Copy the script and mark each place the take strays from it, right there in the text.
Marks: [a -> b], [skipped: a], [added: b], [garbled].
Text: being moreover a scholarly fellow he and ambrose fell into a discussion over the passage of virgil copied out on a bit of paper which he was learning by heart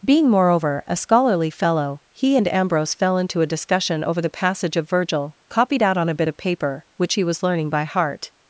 being moreover a scholarly fellow he and ambrose fell into a discussion over the passage of virgil copied out on a bit of paper which he was learning by heart